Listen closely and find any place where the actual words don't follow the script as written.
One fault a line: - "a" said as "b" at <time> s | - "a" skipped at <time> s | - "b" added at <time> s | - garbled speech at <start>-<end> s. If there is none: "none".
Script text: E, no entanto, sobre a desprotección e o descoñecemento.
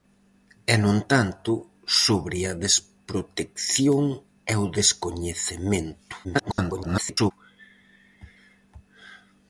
- garbled speech at 6.2-7.3 s